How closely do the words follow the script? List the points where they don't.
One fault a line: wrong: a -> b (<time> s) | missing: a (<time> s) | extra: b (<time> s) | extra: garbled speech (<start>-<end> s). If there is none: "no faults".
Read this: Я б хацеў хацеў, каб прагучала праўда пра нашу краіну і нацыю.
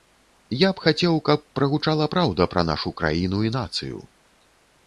missing: хацеў (1.2 s)